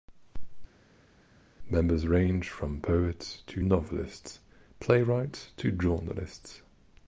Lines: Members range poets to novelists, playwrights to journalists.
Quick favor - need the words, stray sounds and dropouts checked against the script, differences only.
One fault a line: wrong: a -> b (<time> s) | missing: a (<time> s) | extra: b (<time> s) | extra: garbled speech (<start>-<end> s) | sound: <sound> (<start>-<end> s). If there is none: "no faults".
extra: from (2.5 s)